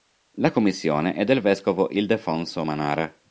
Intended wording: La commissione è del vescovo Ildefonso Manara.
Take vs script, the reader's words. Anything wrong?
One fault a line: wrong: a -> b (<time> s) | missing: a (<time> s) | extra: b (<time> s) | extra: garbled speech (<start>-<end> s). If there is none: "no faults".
no faults